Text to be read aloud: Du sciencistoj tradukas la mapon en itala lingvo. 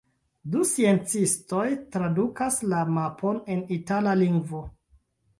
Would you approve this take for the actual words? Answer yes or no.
yes